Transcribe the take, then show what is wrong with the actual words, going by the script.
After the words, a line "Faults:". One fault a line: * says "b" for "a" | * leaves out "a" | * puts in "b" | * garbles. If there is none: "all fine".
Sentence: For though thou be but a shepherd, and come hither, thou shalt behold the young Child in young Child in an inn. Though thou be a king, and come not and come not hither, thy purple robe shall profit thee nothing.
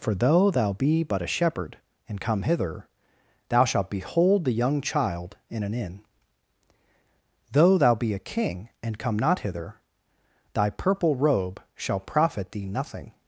For though thou be but a shepherd, and come hither, thou shalt behold the young Child in an inn. Though thou be a king, and come not hither, thy purple robe shall profit thee nothing.
Faults:
* leaves out "young Child in"
* leaves out "and come not"